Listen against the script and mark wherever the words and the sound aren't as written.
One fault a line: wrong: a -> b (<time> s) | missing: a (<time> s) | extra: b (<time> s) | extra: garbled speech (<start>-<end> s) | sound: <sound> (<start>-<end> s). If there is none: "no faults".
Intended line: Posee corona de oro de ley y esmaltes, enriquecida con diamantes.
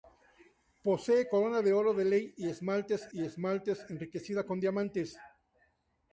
extra: y esmaltes (3.1 s)